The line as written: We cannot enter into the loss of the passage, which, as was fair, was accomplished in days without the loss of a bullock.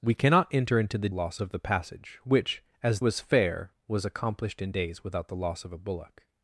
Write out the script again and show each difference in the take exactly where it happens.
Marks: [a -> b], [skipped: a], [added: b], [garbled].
We cannot enter into the loss of the passage, which, as was fair, was accomplished in days without the loss of a bullock.